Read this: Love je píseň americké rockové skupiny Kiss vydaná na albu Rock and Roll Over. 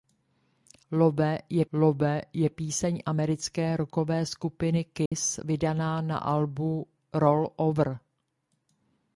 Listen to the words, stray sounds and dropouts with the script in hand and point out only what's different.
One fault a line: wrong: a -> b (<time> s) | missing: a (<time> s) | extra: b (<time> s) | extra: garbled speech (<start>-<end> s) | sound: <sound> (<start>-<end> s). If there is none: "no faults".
extra: love je (1.7 s)
sound: dropout (5.1-5.1 s)
missing: Rock and (6.9 s)